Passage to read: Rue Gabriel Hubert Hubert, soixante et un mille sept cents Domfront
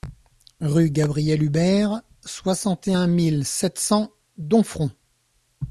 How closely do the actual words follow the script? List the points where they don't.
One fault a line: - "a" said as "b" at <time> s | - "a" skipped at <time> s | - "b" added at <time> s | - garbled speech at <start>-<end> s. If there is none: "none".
- "Hubert" skipped at 2.0 s